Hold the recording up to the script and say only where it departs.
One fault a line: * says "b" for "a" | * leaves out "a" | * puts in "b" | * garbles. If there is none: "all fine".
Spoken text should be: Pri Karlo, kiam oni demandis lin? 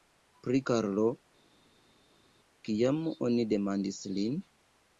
all fine